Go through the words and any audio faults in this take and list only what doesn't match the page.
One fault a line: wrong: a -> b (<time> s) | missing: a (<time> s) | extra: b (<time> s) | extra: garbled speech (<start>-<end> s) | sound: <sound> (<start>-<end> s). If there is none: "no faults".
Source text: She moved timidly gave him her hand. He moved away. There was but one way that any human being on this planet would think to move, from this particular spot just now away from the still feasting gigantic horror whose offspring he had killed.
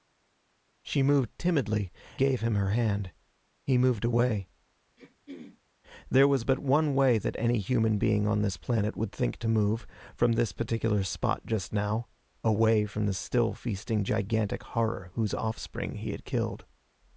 sound: throat clearing (5.0-5.6 s)